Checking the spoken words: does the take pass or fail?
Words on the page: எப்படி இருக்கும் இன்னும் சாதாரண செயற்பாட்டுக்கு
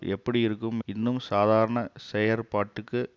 pass